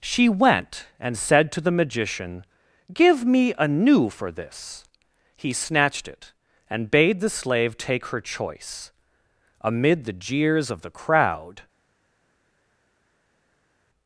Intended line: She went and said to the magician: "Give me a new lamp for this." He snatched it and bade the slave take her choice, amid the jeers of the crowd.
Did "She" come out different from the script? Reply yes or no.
no